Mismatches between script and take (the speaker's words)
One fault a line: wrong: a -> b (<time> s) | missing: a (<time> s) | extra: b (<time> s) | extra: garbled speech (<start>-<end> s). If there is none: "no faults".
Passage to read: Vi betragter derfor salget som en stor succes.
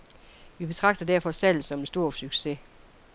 no faults